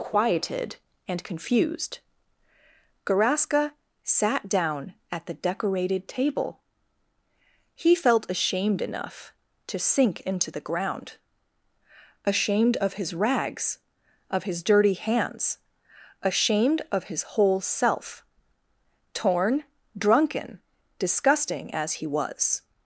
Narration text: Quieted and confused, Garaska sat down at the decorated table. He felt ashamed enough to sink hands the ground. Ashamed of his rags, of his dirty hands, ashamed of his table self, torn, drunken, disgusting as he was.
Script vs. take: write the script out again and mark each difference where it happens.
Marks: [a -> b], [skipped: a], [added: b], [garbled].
Quieted and confused, Garaska sat down at the decorated table. He felt ashamed enough to sink [hands -> into] the ground. Ashamed of his rags, of his dirty hands, ashamed of his [table -> whole] self, torn, drunken, disgusting as he was.